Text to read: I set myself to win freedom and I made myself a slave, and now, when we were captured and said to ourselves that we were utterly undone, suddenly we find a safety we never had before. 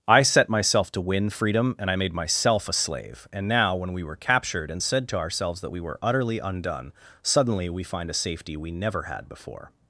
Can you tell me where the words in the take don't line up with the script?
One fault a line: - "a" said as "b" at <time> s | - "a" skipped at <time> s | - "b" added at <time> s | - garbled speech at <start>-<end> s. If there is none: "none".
none